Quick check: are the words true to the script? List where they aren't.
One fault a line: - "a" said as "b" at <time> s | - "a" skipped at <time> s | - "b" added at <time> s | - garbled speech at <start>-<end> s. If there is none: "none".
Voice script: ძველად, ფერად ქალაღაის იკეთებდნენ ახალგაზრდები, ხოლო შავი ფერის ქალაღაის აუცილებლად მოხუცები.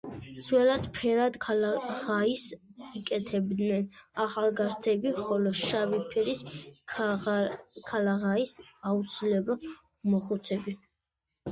none